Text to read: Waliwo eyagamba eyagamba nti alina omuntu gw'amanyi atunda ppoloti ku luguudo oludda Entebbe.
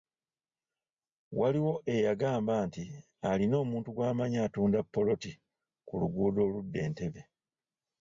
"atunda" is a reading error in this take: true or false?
false